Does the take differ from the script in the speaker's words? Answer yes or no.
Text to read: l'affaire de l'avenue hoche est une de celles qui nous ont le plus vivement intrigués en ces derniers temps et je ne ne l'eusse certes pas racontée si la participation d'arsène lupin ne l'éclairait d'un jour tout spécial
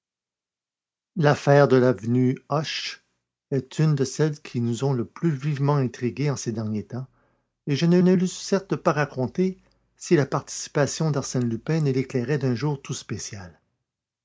no